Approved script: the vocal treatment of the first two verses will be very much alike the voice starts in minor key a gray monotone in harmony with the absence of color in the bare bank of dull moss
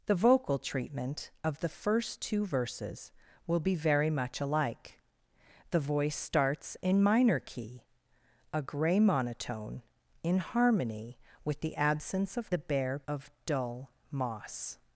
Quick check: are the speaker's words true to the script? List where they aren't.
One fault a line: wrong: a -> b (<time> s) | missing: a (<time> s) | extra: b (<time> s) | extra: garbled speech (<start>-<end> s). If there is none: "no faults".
missing: color in (12.5 s)
missing: bank (13.0 s)